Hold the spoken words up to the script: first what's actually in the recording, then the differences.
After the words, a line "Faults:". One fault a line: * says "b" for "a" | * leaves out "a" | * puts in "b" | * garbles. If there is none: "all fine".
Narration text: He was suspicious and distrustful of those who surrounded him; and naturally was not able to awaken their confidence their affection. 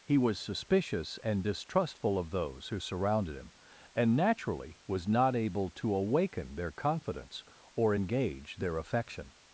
He was suspicious and distrustful of those who surrounded him; and naturally was not able to awaken their confidence or engage their affection.
Faults:
* puts in "or engage"